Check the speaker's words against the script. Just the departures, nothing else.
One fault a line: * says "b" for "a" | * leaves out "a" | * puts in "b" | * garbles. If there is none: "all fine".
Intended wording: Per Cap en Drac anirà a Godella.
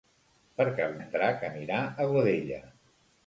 all fine